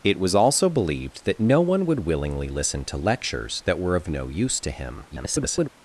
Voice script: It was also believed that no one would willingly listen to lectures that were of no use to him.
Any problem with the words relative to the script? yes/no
yes